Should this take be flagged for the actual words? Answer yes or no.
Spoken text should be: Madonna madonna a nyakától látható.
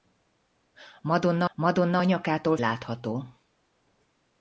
no